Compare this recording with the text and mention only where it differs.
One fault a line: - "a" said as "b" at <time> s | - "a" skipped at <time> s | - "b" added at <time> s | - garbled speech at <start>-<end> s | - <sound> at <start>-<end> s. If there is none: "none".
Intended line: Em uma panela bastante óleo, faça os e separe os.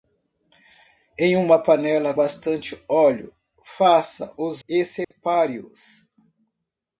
- dropout at 5.0-5.1 s